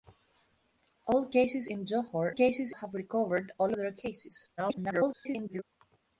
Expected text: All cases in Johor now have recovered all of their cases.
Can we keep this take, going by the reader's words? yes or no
no